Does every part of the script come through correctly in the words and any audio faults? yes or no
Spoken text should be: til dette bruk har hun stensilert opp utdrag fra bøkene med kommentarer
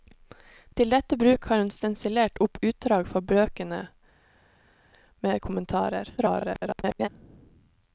no